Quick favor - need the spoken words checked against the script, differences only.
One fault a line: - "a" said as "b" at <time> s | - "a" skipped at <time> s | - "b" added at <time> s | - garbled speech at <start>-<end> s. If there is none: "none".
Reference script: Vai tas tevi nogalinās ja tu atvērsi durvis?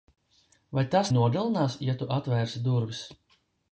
- "tevi" skipped at 1.1 s